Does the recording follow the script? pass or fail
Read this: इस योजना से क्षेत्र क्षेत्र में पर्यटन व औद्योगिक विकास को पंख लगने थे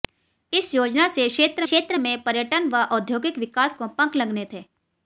pass